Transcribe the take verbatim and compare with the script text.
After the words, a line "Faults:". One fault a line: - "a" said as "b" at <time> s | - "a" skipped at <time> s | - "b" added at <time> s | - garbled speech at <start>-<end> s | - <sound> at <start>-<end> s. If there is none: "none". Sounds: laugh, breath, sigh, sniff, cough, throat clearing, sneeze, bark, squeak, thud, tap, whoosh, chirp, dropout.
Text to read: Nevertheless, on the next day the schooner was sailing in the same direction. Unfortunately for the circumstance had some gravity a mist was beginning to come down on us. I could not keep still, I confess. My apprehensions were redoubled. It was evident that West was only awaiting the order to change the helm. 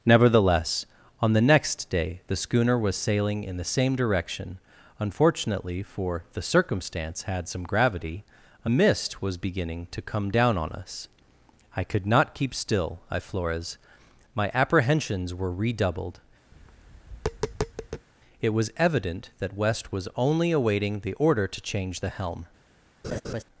Nevertheless, on the next day the schooner was sailing in the same direction. Unfortunately for the circumstance had some gravity a mist was beginning to come down on us. I could not keep still, I flores. My apprehensions were redoubled. It was evident that West was only awaiting the order to change the helm.
Faults:
- "confess" said as "flores" at 13.2 s
- tap at 16.5-18.1 s
- laugh at 23.0-23.4 s